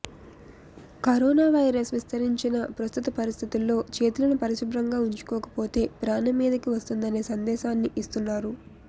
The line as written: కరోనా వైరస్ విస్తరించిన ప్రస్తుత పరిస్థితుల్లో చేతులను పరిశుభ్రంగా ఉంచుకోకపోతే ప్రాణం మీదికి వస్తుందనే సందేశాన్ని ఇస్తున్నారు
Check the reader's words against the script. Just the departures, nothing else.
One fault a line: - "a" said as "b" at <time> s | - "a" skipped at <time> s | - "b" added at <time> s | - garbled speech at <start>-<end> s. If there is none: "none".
none